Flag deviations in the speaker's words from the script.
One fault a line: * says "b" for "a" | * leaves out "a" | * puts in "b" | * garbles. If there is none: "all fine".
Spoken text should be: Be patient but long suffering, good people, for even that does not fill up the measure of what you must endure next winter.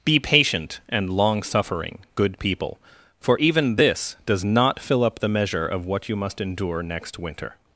* says "and" for "but"
* says "this" for "that"